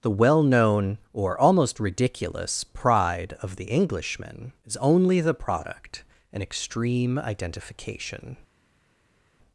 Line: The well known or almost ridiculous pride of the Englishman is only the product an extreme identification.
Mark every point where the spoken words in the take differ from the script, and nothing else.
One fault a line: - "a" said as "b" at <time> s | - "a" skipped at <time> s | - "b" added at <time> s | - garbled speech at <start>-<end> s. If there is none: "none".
none